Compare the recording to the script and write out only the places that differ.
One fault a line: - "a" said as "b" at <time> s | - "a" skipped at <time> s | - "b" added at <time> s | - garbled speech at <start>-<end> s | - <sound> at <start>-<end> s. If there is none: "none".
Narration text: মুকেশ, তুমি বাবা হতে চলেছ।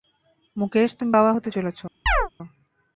- chirp at 2.1-2.3 s